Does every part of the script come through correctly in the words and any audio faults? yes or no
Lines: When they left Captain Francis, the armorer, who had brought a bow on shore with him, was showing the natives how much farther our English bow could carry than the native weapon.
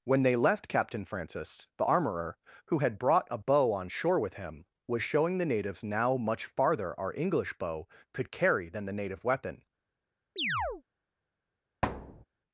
no